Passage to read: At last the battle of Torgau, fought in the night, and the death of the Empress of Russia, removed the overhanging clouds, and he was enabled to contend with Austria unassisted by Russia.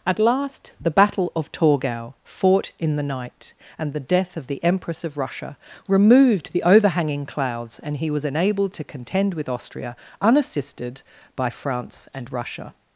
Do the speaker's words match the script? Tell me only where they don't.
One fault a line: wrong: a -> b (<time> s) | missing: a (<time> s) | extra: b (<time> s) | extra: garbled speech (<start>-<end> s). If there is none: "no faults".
extra: France and (11.5 s)